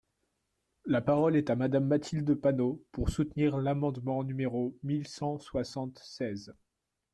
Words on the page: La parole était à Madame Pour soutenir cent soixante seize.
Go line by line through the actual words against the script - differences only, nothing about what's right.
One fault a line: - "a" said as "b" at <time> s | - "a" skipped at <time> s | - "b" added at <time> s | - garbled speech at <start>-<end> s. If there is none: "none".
- "était" said as "est" at 1.4 s
- "Mathilde Panot" added at 1.9 s
- "l'amendement numéro mille" added at 3.6 s